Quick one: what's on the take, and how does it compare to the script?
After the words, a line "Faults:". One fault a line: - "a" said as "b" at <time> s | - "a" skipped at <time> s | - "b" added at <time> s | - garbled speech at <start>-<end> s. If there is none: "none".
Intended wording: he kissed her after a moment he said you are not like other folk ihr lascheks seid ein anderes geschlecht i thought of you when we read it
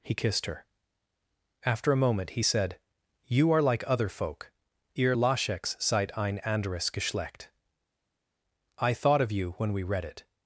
he kissed her after a moment he said you are like other folk ihr lascheks seid ein anderes geschlecht i thought of you when we read it
Faults:
- "not" skipped at 3.6 s